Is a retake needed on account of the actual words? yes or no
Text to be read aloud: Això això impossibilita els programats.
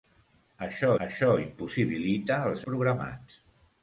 no